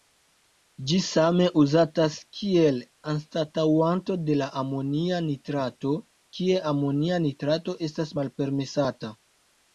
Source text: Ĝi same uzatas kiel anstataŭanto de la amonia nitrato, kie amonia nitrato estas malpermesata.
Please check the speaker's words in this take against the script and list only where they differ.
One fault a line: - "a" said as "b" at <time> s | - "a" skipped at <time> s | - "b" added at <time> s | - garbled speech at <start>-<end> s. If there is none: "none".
none